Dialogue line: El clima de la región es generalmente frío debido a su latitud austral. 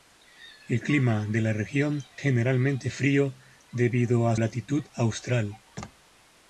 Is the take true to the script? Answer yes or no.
no